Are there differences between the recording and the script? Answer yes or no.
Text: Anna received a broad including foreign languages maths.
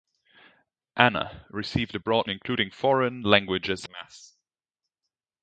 no